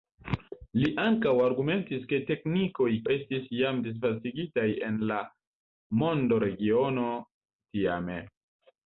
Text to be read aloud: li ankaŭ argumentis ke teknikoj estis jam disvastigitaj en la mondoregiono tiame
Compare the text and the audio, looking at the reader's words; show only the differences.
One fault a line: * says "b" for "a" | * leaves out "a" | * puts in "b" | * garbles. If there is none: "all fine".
all fine